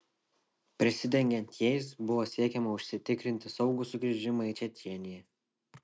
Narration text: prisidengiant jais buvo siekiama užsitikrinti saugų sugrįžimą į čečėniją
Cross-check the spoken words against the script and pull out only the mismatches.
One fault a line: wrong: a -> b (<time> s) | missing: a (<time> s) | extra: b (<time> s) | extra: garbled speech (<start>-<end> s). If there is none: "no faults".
no faults